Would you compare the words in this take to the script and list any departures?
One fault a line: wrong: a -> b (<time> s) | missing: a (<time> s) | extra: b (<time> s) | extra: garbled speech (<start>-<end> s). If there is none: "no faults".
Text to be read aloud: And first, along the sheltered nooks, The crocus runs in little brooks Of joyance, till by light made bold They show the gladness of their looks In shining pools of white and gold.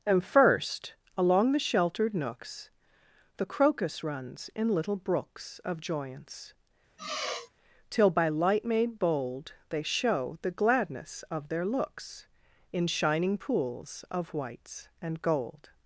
wrong: white -> whites (14.3 s)